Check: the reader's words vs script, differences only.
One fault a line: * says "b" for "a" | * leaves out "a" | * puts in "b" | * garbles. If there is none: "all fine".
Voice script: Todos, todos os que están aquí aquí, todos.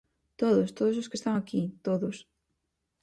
* leaves out "aquí"